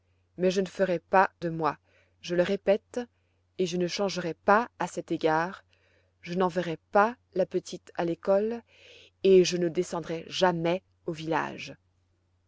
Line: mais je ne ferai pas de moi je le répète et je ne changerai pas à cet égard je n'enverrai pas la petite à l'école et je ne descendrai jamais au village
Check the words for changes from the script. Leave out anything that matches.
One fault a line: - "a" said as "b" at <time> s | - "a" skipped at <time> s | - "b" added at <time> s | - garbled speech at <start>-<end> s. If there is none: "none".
none